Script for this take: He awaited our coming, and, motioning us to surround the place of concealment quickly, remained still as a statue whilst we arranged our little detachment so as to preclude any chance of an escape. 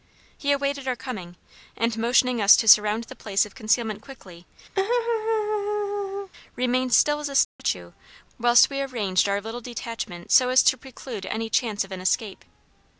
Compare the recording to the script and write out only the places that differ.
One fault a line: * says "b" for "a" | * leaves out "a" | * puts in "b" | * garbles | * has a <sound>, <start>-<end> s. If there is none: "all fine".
* has a laugh, 4.8-6.3 s
* has a dropout, 7.4-7.6 s